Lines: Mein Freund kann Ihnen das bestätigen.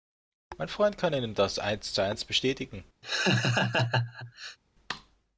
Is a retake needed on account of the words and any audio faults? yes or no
yes